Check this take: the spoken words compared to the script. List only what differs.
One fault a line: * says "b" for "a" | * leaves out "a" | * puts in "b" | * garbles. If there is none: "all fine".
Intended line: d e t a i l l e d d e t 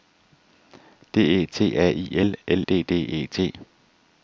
* leaves out "e"